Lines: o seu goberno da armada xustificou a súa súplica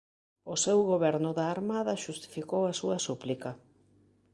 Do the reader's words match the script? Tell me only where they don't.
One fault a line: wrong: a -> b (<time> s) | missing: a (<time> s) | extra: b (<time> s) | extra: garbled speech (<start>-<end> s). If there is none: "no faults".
no faults